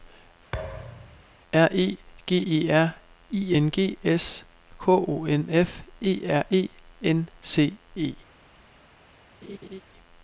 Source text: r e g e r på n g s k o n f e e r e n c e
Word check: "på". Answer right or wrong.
wrong